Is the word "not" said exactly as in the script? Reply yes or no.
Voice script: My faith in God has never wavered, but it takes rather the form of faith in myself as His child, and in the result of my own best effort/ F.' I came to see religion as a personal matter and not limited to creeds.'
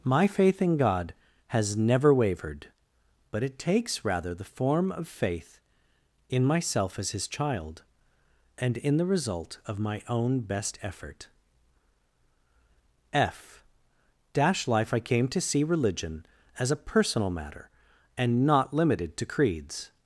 yes